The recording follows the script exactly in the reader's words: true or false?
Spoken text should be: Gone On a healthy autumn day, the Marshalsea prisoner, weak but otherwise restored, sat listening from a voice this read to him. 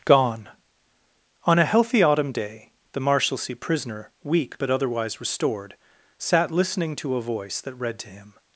false